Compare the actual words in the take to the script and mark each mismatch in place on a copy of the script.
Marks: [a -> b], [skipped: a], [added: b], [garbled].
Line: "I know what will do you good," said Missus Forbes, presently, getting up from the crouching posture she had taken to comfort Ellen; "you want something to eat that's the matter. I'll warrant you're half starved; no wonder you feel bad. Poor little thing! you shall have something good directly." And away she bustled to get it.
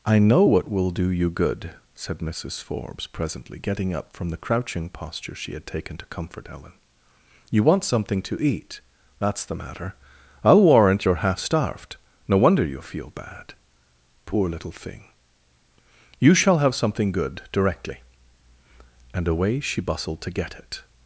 "I know what will do you good," said Missus Forbes, presently, getting up from the crouching posture she had taken to comfort Ellen; "you want something to eat that's the matter. I'll warrant you're half starved; no wonder you feel bad. Poor little thing! you shall have something good directly." And away she bustled to get it.